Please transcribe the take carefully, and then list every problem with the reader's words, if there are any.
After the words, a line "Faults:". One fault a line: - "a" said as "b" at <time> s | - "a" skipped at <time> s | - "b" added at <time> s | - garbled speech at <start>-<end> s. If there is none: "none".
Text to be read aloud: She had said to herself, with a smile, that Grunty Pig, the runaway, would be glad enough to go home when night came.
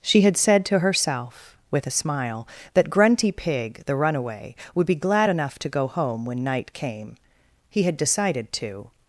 She had said to herself, with a smile, that Grunty Pig, the runaway, would be glad enough to go home when night came. He had decided to
Faults:
- "He had decided to" added at 7.7 s